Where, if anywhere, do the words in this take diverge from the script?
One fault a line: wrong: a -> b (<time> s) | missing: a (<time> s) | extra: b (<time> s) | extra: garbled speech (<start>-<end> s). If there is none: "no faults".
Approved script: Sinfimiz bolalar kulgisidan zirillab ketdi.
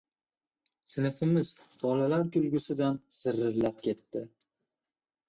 no faults